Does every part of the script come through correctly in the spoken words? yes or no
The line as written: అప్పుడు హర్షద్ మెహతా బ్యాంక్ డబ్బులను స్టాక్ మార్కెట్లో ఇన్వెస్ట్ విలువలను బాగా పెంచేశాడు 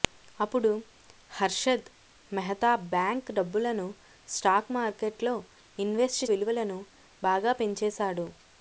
yes